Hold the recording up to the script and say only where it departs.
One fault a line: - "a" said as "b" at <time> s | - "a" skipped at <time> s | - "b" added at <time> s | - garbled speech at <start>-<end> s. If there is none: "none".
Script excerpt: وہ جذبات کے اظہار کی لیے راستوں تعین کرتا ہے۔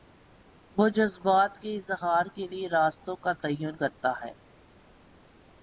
- "کی" said as "کے" at 2.3 s
- "کا" added at 3.2 s